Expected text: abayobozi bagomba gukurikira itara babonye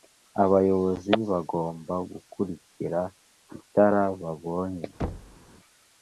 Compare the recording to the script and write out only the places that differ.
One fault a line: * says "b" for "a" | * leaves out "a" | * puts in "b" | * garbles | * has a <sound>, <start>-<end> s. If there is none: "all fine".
* has a thud, 5.0-5.4 s